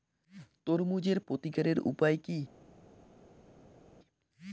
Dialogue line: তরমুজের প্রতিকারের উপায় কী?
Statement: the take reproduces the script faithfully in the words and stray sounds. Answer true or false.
true